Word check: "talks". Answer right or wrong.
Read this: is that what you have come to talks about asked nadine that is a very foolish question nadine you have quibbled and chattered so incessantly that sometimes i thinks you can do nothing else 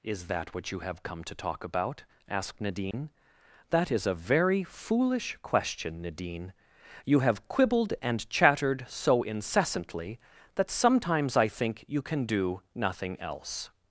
wrong